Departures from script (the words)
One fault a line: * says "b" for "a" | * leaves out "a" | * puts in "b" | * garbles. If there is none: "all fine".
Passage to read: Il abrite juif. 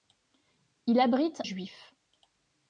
all fine